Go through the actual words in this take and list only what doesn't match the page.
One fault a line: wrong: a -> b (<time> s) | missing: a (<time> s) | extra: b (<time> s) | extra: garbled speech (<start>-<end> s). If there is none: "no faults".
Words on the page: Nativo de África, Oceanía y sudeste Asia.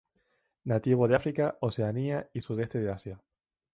extra: de (2.8 s)